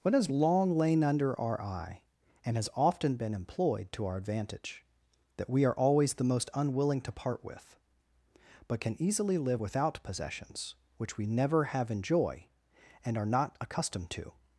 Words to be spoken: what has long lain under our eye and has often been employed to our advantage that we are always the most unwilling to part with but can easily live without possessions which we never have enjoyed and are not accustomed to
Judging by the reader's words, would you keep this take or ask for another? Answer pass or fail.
fail